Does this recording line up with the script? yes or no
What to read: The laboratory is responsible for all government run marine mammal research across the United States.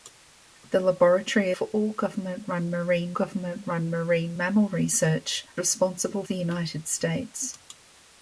no